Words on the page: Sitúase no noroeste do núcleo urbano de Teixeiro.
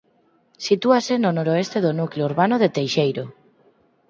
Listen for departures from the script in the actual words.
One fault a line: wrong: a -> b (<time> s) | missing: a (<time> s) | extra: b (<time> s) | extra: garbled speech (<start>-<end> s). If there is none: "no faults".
no faults